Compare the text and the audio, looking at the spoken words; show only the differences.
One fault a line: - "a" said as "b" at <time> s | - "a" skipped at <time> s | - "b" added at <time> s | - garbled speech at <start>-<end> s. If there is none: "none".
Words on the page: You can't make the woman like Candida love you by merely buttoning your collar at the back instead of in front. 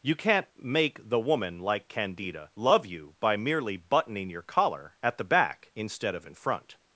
none